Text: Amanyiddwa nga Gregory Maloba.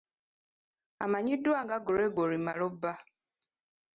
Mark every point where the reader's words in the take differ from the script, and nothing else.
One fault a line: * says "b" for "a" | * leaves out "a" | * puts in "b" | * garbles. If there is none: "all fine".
all fine